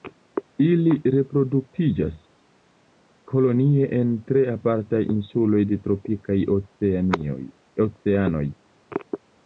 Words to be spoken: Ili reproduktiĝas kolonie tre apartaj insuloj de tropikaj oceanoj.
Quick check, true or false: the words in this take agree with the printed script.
false